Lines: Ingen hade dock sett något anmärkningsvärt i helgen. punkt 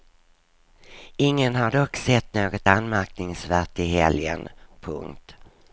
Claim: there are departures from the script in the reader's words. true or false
true